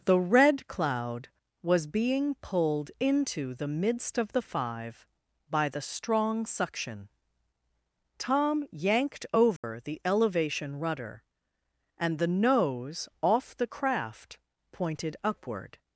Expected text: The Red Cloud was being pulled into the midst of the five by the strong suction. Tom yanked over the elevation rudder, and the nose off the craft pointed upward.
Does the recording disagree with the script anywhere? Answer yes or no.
no